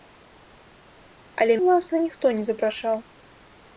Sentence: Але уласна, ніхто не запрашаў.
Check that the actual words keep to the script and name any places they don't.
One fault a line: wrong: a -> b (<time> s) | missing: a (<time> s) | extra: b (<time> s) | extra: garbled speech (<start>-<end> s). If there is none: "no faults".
no faults